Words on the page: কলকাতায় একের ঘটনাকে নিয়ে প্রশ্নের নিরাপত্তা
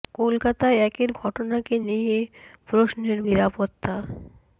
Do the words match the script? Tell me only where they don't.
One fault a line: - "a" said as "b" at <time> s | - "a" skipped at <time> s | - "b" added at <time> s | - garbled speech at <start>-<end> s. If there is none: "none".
none